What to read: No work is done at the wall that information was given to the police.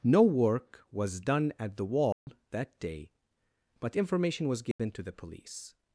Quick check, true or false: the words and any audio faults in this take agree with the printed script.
false